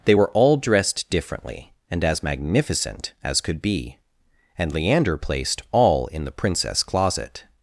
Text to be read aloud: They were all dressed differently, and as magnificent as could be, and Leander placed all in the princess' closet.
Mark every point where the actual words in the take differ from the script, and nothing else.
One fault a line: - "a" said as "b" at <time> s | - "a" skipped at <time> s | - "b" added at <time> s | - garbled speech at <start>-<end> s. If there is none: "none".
none